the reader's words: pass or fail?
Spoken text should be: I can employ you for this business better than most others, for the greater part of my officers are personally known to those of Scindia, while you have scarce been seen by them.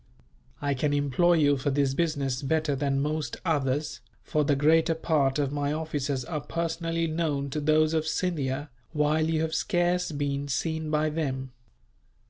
pass